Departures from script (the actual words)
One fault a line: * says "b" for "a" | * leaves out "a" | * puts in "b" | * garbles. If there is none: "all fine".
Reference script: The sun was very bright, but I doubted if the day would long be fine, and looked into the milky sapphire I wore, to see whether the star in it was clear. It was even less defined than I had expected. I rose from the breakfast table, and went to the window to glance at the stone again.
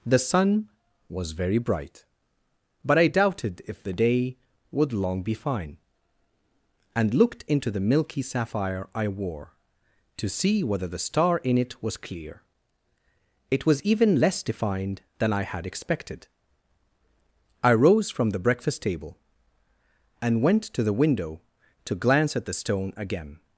all fine